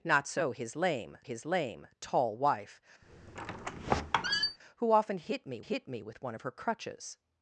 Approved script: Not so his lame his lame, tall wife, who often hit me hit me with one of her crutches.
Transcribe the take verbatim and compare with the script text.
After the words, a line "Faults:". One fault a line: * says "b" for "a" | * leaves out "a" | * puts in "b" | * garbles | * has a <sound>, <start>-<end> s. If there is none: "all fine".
Not so his lame his lame, tall wife, who often hit me hit me with one of her crutches.
Faults:
* has a squeak, 3.0-4.6 s